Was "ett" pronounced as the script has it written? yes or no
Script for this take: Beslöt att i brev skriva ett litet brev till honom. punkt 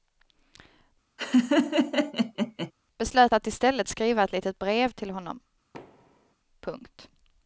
yes